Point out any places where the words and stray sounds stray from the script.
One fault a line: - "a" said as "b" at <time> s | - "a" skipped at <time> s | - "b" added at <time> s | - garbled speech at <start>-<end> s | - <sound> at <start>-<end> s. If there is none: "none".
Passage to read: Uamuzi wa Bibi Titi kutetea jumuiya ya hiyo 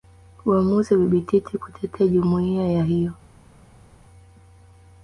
none